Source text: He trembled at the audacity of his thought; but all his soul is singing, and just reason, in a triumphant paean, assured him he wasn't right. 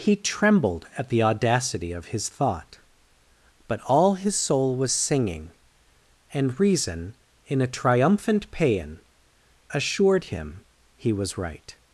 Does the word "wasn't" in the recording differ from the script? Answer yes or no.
yes